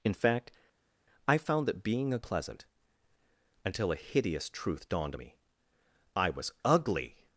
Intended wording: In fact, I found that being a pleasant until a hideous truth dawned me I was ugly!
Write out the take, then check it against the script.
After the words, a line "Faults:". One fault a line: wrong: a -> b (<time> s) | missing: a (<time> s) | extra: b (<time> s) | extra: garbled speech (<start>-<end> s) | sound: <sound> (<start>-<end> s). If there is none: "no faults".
In fact, I found that being a pleasant until a hideous truth dawned me I was ugly!
Faults:
no faults